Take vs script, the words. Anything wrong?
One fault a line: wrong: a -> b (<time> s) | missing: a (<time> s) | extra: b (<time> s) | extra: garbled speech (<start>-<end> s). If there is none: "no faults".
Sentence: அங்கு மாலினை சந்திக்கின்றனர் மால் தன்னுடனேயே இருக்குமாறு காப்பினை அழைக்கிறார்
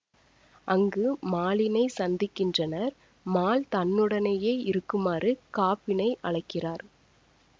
no faults